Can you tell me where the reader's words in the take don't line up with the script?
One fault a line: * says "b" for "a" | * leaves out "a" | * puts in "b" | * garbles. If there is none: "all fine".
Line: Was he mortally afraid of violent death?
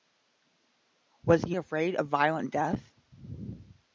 * leaves out "mortally"